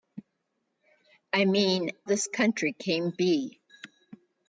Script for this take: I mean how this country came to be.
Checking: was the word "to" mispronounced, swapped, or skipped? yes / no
yes